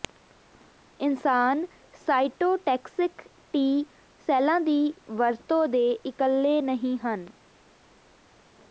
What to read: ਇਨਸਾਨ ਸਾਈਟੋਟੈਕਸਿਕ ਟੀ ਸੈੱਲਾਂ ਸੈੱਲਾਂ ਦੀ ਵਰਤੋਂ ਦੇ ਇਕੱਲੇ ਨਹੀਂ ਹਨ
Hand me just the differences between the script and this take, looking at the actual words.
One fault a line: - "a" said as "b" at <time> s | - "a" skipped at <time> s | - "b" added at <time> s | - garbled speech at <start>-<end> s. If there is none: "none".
- "ਸੈੱਲਾਂ" skipped at 4.6 s